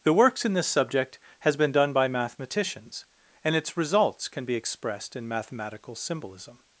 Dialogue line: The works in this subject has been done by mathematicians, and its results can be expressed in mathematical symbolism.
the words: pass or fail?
pass